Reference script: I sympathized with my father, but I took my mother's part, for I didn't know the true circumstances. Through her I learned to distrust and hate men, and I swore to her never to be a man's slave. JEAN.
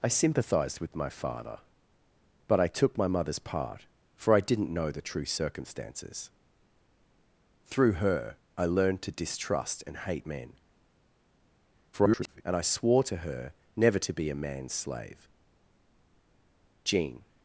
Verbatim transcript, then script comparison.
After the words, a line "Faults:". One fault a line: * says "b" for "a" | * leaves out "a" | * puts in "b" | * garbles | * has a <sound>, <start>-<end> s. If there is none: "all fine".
I sympathized with my father, but I took my mother's part, for I didn't know the true circumstances. Through her I learned to distrust and hate men, [garbled] and I swore to her never to be a man's slave. JEAN.
Faults:
* garbles